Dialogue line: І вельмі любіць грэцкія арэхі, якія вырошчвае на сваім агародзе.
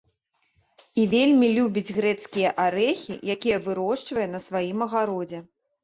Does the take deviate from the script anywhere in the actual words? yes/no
no